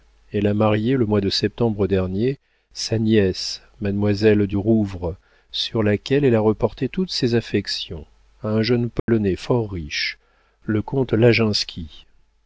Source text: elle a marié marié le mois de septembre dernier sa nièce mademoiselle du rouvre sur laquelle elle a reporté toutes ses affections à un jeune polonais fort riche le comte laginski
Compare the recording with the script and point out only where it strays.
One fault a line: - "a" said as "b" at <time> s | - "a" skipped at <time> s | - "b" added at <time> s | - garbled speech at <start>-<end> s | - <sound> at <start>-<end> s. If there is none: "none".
- "marié" skipped at 1.0 s
- dropout at 9.0-9.1 s